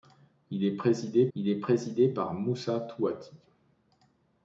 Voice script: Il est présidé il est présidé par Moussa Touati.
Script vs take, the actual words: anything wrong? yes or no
no